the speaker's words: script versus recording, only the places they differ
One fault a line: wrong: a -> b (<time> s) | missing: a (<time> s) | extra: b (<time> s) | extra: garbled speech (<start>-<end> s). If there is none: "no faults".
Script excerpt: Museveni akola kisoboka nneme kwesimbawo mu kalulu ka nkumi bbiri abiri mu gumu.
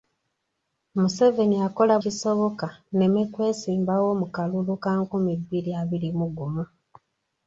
no faults